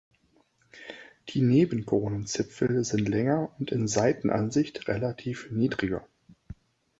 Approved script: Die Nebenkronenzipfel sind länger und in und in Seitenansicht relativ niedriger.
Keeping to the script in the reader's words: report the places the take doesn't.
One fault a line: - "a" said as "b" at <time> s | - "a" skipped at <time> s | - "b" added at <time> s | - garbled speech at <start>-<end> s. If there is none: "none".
- "und in" skipped at 3.9 s